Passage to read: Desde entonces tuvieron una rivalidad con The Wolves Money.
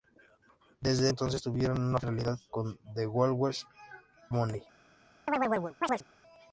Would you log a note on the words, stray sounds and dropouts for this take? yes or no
yes